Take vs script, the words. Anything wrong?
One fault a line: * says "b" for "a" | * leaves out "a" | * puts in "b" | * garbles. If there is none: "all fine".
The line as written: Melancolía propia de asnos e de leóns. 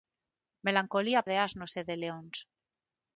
* leaves out "propia"